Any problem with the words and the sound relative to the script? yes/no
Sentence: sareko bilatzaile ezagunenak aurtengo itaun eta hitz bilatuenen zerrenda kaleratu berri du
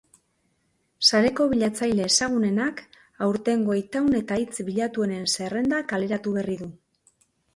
no